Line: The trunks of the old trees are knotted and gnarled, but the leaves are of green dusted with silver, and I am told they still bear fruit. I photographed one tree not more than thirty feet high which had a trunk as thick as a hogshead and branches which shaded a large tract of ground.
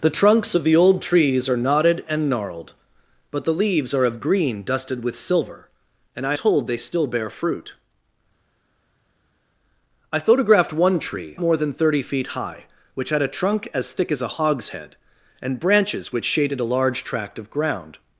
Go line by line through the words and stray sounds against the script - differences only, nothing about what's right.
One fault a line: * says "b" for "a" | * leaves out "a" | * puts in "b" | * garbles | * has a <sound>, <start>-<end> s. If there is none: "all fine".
* leaves out "am"
* leaves out "not"